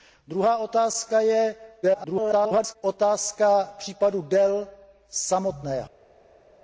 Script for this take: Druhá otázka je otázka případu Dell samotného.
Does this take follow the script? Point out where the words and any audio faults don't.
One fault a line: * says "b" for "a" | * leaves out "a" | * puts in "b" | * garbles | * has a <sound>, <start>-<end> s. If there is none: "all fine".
* garbles